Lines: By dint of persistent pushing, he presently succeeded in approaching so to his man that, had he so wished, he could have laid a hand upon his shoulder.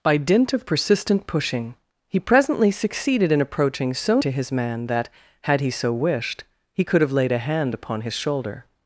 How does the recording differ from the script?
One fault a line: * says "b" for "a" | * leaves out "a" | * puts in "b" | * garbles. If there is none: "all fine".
all fine